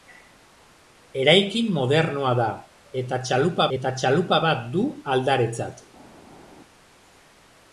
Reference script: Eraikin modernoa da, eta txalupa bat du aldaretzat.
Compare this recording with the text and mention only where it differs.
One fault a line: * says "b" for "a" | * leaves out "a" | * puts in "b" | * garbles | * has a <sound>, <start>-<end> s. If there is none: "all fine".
* puts in "eta txalupa"